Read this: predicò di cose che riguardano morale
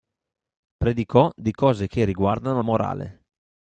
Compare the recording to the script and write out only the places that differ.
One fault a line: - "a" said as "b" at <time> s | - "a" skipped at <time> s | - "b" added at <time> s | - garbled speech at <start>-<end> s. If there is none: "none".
none